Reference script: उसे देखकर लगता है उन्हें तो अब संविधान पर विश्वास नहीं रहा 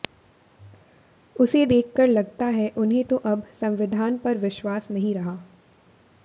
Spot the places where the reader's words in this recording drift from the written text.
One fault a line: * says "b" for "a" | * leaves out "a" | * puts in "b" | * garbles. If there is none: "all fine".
all fine